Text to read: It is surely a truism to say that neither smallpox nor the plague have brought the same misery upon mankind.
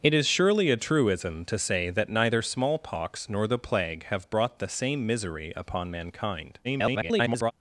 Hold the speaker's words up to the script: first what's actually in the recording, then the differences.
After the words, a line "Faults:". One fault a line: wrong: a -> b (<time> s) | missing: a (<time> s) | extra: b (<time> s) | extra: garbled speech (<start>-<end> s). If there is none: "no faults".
It is surely a truism to say that neither smallpox nor the plague have brought the same misery upon mankind. [garbled]
Faults:
extra: garbled speech (6.6-7.5 s)